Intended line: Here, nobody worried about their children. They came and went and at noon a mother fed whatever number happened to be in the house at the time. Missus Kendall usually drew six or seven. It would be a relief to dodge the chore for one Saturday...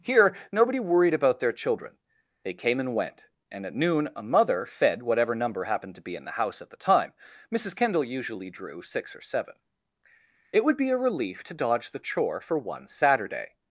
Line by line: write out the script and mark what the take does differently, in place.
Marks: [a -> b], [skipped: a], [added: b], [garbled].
Here, nobody worried about their children. They came and went and at noon a mother fed whatever number happened to be in the house at the time. Missus Kendall usually drew six or seven. It would be a relief to dodge the chore for one Saturday...